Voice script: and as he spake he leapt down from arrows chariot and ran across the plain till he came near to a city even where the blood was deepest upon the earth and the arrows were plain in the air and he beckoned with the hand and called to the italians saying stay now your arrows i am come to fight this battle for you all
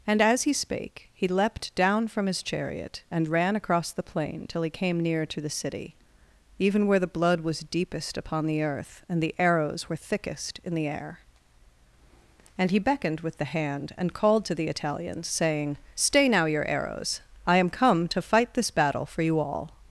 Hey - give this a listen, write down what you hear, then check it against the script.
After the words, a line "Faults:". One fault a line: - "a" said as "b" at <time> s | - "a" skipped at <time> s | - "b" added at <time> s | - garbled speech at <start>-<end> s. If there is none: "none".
and as he spake he leapt down from his chariot and ran across the plain till he came near to the city even where the blood was deepest upon the earth and the arrows were thickest in the air and he beckoned with the hand and called to the italians saying stay now your arrows i am come to fight this battle for you all
Faults:
- "arrows" said as "his" at 2.2 s
- "a" said as "the" at 5.4 s
- "plain" said as "thickest" at 9.9 s